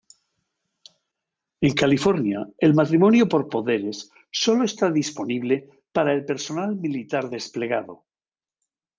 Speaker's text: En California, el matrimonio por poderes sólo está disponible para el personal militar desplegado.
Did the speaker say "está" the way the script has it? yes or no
yes